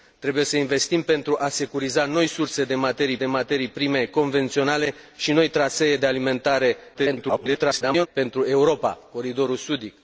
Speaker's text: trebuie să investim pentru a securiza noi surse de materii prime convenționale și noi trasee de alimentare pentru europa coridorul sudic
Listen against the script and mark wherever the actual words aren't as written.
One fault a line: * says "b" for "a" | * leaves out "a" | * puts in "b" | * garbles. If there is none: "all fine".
* puts in "de materii"
* garbles